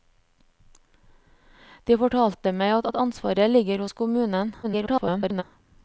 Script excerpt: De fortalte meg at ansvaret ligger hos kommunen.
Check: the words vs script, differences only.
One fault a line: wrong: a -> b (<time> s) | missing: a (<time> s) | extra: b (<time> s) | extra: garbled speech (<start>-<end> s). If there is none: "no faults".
extra: at (2.9 s)
extra: garbled speech (4.6-5.4 s)